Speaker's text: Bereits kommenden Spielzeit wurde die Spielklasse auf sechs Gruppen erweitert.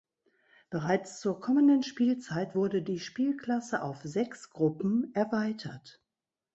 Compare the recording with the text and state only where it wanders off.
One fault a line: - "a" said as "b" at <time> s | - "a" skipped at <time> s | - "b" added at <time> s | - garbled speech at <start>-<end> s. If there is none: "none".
- "zur" added at 1.2 s